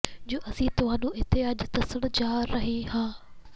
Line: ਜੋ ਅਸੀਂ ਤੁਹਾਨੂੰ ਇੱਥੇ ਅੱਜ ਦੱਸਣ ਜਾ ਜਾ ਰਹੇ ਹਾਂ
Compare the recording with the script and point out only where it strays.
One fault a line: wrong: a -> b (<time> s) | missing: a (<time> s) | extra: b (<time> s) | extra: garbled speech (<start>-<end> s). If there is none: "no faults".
missing: ਜਾ (2.4 s)